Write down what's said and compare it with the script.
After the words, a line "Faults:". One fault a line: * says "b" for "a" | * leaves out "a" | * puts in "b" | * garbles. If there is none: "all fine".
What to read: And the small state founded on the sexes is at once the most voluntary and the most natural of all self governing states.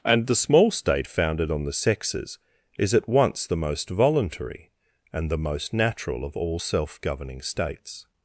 And the small state founded on the sexes is at once the most voluntary and the most natural of all self governing states.
Faults:
all fine